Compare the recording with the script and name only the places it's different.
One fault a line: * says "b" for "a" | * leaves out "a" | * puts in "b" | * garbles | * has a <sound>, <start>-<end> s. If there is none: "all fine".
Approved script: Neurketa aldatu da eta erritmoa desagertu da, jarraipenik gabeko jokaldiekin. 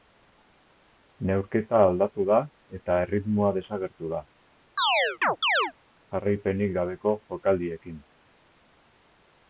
* has a chirp, 4.8-5.7 s